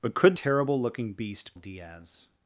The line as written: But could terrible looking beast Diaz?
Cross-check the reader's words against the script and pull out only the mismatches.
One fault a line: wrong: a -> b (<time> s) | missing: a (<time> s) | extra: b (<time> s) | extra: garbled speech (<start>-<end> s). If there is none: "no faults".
no faults